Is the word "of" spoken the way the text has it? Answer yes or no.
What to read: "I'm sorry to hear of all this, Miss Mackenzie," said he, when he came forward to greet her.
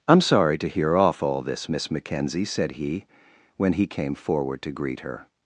no